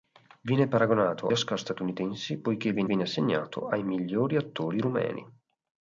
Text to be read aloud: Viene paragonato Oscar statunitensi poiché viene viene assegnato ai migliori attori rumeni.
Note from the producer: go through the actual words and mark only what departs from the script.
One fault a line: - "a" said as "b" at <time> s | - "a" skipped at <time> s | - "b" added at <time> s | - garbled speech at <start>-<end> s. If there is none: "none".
none